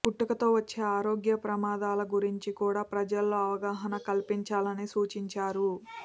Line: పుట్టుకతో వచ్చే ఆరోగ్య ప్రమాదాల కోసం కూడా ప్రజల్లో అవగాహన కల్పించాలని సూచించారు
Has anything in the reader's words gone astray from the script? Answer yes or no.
yes